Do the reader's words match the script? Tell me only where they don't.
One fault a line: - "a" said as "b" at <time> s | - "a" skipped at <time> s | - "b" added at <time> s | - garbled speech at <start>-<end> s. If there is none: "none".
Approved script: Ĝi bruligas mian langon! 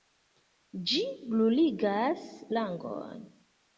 - "mian" skipped at 2.2 s